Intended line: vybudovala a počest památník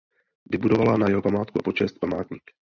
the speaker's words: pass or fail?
fail